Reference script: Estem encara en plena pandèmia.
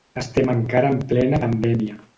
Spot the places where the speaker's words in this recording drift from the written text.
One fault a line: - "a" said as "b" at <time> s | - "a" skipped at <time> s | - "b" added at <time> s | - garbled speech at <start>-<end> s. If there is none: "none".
none